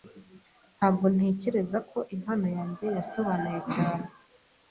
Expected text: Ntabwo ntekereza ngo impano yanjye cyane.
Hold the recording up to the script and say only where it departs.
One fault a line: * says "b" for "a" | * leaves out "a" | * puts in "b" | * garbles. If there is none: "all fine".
* says "ko" for "ngo"
* puts in "yasobanuye"